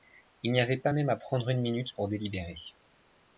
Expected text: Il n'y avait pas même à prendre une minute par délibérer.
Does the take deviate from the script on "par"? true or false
true